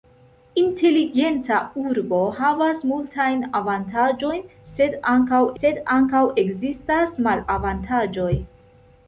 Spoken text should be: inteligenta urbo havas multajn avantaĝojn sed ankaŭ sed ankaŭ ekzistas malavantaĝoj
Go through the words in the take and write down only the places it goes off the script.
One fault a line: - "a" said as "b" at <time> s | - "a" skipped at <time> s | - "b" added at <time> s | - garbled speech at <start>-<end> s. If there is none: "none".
none